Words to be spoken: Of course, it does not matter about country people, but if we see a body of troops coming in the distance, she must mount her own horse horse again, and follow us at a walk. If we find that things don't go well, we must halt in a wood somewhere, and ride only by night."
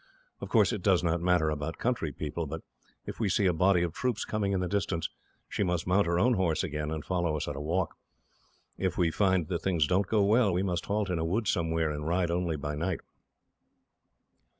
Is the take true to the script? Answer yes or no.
no